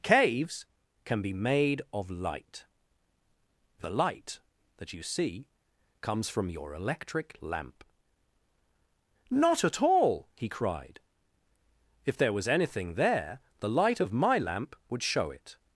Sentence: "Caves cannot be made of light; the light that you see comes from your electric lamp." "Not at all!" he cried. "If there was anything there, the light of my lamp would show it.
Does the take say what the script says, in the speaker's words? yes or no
no